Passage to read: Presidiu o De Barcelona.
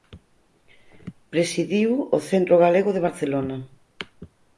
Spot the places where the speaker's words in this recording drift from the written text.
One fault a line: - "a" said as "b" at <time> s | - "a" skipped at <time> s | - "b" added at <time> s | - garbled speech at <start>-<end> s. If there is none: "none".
- "Centro Galego" added at 2.3 s